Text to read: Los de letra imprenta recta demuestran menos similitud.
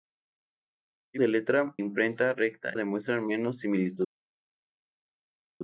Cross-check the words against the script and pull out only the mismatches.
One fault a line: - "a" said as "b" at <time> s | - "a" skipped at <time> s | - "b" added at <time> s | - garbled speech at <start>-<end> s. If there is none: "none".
none